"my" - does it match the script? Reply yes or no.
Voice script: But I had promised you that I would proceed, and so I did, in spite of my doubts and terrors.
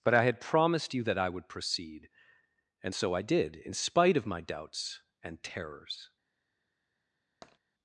yes